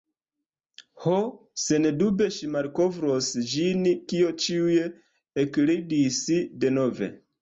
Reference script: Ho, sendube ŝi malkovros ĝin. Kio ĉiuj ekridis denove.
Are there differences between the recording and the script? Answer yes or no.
no